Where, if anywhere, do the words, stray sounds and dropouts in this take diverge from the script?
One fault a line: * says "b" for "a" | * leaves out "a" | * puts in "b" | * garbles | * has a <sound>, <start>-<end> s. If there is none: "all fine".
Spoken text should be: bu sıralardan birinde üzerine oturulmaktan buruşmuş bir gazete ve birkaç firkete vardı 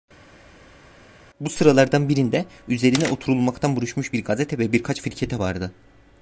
all fine